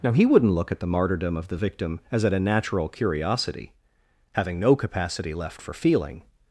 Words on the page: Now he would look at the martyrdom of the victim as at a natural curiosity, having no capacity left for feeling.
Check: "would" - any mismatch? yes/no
yes